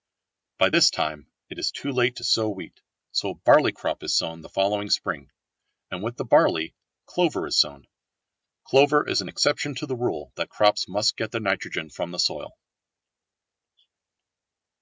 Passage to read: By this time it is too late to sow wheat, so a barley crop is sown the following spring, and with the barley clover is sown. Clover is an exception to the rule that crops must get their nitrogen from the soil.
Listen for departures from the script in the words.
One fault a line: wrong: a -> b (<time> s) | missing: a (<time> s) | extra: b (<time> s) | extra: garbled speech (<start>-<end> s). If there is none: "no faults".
no faults